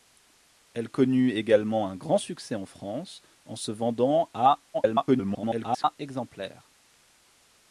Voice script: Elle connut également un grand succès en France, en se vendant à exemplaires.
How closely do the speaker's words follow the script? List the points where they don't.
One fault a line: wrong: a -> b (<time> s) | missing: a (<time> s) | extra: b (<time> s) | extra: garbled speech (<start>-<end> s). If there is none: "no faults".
extra: garbled speech (4.7-6.0 s)